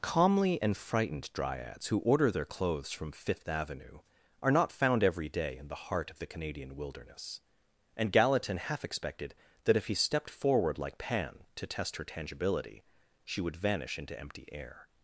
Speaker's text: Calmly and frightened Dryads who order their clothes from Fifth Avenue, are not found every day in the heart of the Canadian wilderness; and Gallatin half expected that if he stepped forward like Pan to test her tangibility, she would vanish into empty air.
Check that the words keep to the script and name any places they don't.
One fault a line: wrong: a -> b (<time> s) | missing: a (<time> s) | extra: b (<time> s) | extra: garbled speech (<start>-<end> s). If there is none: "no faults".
no faults